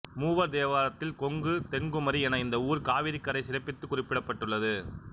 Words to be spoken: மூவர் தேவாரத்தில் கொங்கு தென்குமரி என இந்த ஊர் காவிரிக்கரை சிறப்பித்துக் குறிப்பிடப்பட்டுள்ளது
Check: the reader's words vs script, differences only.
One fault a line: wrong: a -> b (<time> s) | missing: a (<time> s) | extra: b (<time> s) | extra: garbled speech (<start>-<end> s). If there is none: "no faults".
no faults